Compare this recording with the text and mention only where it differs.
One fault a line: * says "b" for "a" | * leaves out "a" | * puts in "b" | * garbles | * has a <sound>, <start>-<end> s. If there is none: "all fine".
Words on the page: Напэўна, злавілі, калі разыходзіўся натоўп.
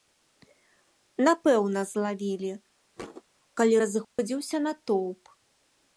* has a thud, 3.0-3.2 s
* has a dropout, 4.0-4.2 s